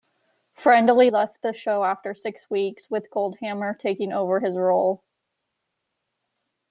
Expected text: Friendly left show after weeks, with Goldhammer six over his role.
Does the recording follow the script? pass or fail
fail